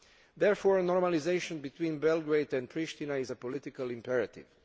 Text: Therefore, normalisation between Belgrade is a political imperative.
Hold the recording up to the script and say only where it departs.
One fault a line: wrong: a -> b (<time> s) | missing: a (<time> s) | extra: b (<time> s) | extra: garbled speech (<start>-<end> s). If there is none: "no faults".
extra: and Pristina (2.5 s)